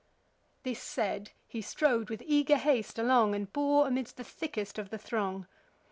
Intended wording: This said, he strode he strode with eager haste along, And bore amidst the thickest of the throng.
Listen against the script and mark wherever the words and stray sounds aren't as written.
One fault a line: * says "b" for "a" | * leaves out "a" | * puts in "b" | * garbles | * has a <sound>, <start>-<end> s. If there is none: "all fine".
* leaves out "he strode"